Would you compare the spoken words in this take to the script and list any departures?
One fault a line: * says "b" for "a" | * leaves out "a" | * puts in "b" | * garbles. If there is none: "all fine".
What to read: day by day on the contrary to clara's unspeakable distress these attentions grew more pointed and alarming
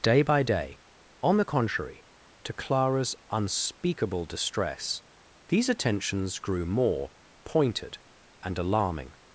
all fine